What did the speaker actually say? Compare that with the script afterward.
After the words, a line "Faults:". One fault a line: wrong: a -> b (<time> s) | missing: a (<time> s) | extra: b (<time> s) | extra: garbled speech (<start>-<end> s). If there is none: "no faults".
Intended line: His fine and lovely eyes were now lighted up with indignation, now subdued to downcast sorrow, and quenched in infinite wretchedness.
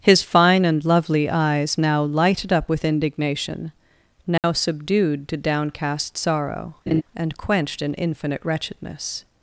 His fine and lovely eyes now lighted up with indignation, now subdued to downcast sorrow, and quenched in infinite wretchedness.
Faults:
missing: were (1.8 s)